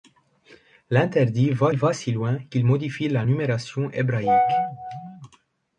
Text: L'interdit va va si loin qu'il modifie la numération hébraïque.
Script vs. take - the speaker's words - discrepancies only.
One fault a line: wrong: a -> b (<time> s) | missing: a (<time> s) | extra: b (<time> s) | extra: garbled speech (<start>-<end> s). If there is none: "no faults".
no faults